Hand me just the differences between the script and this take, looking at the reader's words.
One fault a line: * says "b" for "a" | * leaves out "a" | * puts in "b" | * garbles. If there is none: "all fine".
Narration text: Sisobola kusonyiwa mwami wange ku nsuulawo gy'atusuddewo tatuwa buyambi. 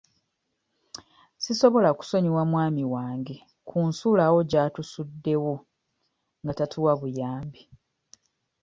* puts in "nga"